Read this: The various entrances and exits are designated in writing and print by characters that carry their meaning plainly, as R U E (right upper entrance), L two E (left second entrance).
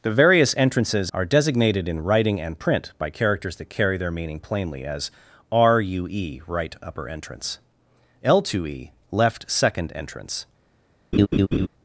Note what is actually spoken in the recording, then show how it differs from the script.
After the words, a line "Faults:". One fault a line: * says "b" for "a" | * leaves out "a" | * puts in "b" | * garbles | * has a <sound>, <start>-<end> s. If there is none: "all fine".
The various entrances are designated in writing and print by characters that carry their meaning plainly, as R U E (right upper entrance), L two E (left second entrance).
Faults:
* leaves out "and exits"
* has a laugh, 11.1-11.7 s